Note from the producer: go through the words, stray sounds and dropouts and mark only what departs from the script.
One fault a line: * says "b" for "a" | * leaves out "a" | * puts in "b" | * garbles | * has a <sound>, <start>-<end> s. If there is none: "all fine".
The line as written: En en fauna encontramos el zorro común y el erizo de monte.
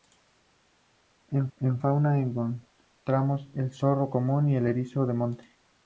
all fine